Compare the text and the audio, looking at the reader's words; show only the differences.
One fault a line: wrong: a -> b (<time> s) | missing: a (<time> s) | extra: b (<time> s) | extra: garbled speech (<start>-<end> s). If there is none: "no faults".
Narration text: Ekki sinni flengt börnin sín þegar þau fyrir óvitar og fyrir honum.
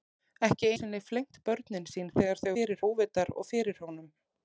no faults